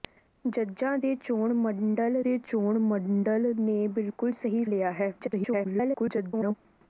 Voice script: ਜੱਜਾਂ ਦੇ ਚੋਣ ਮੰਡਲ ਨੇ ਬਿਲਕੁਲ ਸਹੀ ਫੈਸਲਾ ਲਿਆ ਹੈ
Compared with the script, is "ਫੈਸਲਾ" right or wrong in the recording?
wrong